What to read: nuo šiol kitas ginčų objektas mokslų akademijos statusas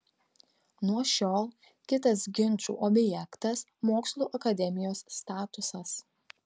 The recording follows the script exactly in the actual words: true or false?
true